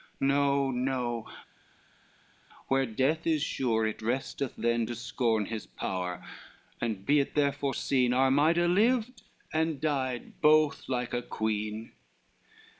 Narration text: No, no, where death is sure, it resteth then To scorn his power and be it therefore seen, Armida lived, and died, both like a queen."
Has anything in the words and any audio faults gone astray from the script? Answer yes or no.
no